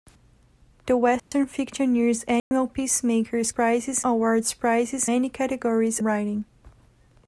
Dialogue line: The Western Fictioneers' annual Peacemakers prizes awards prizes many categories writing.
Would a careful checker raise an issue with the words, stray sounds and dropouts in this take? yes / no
yes